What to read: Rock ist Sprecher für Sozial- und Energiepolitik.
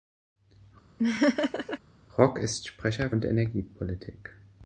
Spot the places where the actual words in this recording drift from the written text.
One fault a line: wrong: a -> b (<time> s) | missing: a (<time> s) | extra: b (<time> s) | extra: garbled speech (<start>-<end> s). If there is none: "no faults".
missing: für Sozial (3.1 s)